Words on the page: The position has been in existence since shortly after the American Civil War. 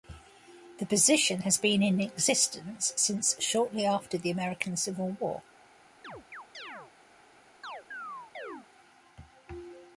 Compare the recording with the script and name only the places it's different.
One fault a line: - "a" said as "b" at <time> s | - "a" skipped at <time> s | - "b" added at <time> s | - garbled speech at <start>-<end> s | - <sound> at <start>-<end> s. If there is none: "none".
- chirp at 6.0-6.9 s
- chirp at 7.6-8.7 s